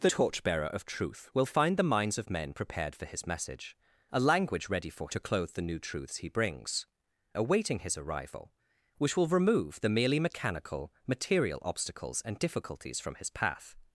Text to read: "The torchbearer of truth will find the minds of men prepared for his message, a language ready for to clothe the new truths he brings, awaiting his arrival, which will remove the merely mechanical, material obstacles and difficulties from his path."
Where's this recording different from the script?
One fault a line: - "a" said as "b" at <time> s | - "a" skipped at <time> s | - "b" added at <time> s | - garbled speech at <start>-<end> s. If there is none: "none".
none